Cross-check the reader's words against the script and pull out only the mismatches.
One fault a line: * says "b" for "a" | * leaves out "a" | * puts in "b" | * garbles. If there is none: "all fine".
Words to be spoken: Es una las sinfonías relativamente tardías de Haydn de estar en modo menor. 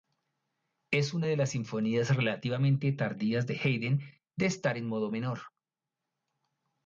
* puts in "de"